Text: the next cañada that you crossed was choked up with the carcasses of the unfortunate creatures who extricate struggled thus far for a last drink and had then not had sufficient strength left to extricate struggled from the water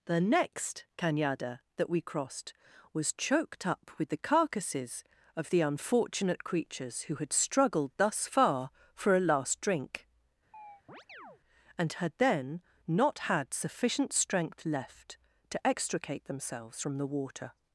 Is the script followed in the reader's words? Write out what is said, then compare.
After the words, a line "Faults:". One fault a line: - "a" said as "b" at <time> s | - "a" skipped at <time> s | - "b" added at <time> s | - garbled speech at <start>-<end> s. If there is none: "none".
the next cañada that we crossed was choked up with the carcasses of the unfortunate creatures who had struggled thus far for a last drink and had then not had sufficient strength left to extricate themselves from the water
Faults:
- "you" said as "we" at 1.9 s
- "extricate" said as "had" at 7.2 s
- "struggled" said as "themselves" at 16.2 s